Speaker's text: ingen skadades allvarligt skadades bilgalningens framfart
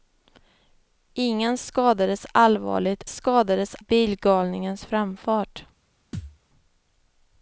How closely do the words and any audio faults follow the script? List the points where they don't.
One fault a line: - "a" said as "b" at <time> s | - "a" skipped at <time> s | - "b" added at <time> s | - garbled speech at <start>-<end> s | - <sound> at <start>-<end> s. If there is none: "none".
- thud at 6.1-6.4 s